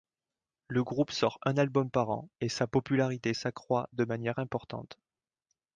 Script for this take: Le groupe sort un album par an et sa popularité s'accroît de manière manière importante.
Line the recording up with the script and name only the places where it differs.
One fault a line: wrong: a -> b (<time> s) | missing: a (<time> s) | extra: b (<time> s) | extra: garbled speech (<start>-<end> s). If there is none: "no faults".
missing: manière (4.4 s)